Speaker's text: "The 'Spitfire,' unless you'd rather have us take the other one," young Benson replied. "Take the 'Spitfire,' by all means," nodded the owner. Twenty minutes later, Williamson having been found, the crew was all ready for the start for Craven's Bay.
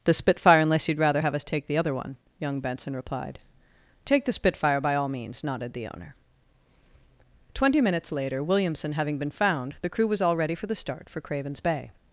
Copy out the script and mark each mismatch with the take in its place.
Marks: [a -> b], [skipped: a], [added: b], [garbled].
"The 'Spitfire,' unless you'd rather have us take the other one," young Benson replied. "Take the 'Spitfire,' by all means," nodded the owner. Twenty minutes later, Williamson having been found, the crew was all ready for the start for Craven's Bay.